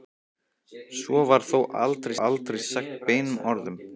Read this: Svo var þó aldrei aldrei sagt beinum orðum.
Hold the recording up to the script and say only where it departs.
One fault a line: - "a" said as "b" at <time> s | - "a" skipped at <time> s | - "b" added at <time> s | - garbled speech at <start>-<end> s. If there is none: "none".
none